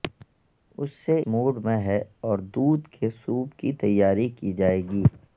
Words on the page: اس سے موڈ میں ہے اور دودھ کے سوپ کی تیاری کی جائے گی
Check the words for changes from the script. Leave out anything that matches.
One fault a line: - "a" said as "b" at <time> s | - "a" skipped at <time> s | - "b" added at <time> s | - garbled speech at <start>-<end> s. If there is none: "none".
none